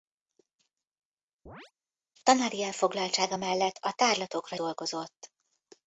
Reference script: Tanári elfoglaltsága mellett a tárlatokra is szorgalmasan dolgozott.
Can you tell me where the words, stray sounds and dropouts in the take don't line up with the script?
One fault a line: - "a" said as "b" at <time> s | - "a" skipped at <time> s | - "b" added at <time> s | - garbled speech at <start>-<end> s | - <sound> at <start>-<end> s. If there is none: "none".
- chirp at 1.5-1.7 s
- "is szorgalmasan" skipped at 4.6 s